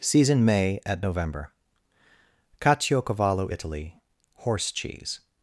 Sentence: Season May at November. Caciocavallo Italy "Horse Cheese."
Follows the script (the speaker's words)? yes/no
yes